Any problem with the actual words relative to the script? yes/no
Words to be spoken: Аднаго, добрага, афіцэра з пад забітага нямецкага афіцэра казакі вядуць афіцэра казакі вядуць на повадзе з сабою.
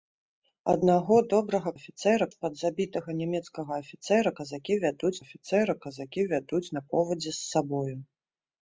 no